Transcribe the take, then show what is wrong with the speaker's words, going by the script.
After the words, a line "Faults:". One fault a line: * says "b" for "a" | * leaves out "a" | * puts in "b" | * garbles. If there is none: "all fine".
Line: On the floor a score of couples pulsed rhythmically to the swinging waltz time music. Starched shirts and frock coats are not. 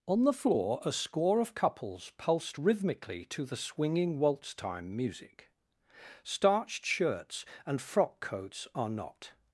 On the floor a score of couples pulsed rhythmically to the swinging waltz time music. Starched shirts and frock coats are not.
Faults:
all fine